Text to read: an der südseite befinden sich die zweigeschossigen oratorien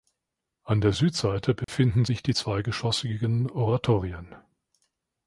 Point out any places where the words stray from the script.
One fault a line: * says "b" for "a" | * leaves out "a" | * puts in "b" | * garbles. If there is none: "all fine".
all fine